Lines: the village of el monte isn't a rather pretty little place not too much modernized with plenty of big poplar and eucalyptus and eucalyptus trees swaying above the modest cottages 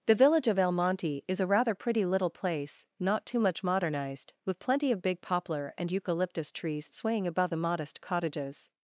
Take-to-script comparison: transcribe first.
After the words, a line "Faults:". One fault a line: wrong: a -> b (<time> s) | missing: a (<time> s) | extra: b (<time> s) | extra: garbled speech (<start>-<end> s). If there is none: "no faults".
the village of el monte is a rather pretty little place not too much modernized with plenty of big poplar and eucalyptus trees swaying above the modest cottages
Faults:
wrong: isn't -> is (1.3 s)
missing: and eucalyptus (6.5 s)